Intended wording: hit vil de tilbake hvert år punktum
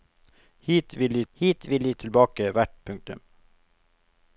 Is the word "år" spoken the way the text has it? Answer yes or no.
no